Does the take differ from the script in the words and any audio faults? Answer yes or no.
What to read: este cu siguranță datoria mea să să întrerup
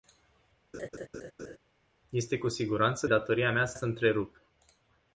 yes